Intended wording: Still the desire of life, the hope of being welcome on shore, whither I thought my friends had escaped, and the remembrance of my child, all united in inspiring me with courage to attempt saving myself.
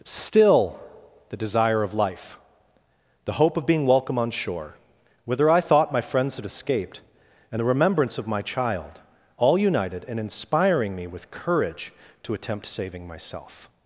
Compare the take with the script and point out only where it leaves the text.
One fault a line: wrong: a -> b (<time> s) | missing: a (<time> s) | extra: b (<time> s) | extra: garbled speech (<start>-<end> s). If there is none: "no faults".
no faults